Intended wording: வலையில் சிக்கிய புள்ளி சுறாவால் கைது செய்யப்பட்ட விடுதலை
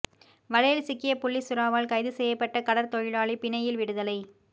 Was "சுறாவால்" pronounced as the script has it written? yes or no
yes